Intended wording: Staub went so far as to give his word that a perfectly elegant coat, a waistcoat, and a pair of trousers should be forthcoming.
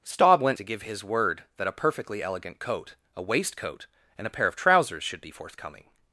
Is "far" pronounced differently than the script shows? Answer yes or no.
yes